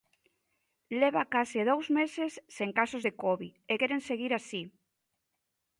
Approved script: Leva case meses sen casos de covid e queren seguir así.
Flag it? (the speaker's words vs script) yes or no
yes